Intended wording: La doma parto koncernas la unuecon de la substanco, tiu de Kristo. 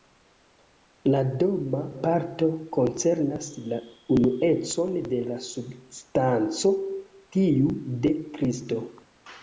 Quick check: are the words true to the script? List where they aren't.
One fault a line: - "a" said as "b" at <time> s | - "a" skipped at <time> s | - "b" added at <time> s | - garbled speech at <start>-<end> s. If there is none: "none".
none